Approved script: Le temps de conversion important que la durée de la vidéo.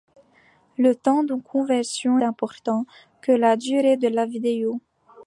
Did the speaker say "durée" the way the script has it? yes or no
yes